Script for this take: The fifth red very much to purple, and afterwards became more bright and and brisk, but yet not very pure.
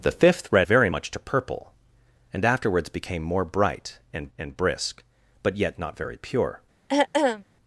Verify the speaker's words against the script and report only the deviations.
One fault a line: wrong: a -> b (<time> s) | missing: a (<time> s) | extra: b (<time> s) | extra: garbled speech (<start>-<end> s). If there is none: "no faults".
no faults